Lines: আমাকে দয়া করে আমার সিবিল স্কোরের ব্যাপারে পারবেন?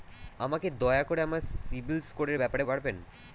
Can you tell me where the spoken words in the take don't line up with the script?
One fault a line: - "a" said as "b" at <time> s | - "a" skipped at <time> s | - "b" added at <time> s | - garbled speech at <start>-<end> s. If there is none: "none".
none